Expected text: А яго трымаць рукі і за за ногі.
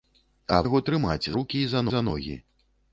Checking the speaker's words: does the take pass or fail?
pass